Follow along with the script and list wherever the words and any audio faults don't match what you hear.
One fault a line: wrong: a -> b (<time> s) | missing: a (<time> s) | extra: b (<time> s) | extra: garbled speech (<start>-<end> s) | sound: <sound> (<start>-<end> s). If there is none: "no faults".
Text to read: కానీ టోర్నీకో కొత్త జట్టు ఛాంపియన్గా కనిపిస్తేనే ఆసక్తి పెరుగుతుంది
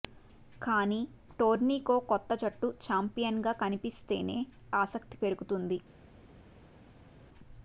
no faults